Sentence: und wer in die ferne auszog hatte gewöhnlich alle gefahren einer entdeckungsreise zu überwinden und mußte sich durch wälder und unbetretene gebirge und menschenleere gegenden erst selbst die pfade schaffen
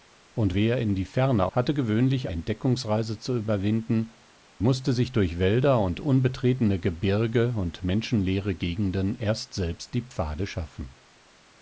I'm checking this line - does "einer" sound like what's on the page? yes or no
no